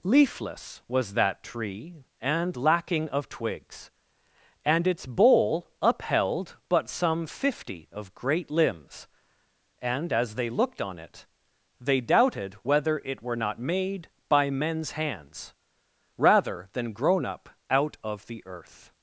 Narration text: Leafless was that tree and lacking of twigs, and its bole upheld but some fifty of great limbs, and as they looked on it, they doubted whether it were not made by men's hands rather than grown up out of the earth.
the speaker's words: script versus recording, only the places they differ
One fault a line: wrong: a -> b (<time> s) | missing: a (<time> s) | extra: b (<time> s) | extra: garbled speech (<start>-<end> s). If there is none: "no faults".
no faults